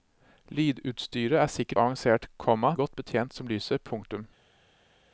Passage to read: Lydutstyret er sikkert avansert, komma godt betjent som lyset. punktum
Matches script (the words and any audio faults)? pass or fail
pass